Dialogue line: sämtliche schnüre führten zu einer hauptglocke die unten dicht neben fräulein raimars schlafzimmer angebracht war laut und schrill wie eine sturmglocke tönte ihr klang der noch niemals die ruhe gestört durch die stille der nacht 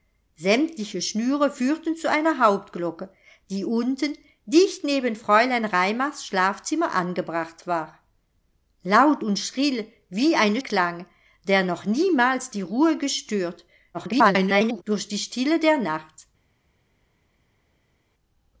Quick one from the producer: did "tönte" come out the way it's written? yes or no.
no